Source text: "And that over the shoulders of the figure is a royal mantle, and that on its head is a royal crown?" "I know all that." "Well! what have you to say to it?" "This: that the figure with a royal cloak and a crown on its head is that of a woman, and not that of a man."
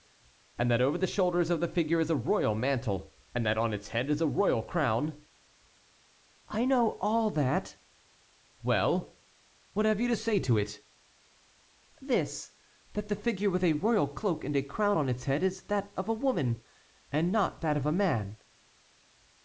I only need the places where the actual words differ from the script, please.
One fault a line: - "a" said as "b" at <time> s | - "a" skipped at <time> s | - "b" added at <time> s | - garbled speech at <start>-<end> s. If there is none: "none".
none